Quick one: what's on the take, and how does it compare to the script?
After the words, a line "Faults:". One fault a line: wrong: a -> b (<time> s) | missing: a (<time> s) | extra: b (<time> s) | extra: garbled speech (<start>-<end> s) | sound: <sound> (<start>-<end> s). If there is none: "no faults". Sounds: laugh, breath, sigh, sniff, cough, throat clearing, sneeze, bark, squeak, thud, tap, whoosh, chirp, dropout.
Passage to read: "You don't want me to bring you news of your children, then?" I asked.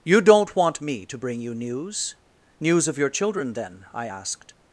"You don't want me to bring you news news of your children, then?" I asked.
Faults:
extra: news (2.6 s)